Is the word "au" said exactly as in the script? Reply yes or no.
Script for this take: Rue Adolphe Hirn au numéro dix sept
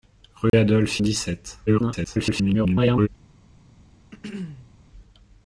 no